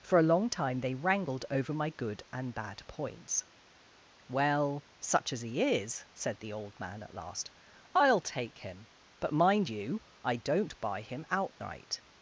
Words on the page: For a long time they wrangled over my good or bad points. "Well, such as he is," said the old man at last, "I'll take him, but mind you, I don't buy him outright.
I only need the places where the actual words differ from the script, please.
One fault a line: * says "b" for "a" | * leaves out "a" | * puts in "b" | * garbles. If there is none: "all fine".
* says "and" for "or"